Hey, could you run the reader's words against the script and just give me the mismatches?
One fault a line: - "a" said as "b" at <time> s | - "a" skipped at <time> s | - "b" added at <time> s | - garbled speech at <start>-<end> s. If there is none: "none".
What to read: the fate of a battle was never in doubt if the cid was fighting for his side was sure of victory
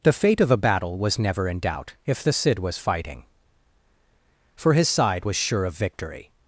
none